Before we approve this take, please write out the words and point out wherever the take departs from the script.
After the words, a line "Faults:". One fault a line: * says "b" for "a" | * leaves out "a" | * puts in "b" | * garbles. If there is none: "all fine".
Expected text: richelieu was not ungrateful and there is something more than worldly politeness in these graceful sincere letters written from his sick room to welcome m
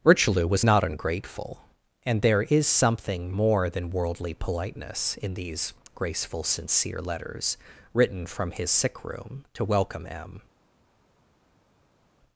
richelieu was not ungrateful and there is something more than worldly politeness in these graceful sincere letters written from his sick room to welcome m
Faults:
all fine